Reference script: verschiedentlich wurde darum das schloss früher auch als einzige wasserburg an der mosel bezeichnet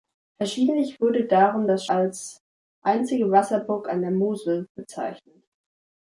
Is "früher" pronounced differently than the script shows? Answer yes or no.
yes